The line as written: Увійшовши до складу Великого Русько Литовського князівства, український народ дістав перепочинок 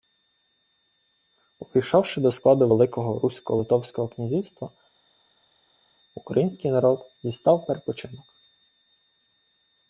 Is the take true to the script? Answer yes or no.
yes